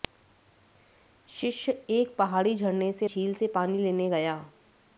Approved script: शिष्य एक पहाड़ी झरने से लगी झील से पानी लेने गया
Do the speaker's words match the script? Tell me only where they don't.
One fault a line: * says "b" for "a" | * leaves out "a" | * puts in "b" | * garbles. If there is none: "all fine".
* leaves out "लगी"